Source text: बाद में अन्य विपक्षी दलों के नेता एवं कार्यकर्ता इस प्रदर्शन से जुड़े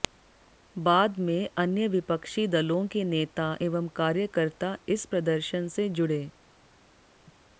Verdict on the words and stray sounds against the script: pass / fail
pass